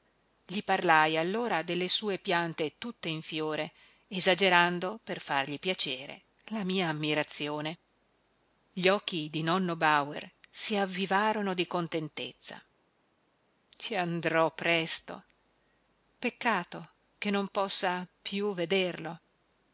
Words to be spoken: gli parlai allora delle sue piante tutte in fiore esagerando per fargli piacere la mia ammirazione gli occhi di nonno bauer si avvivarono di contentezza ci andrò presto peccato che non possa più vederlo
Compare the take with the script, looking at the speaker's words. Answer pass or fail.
pass